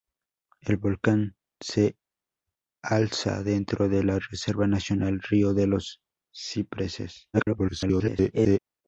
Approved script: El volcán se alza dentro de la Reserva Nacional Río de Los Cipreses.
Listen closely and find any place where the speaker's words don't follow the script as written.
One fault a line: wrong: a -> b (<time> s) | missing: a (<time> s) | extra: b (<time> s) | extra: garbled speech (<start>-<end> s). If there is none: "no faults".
extra: garbled speech (7.3-8.6 s)